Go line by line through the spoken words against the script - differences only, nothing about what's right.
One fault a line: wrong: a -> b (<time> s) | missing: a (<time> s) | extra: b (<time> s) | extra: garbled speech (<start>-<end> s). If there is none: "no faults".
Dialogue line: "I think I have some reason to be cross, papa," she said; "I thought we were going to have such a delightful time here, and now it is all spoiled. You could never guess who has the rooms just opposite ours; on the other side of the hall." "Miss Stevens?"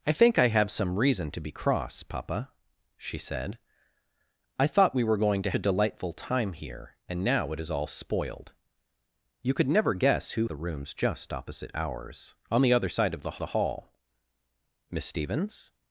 missing: have such (5.5 s)
missing: has (10.5 s)
extra: the (13.4 s)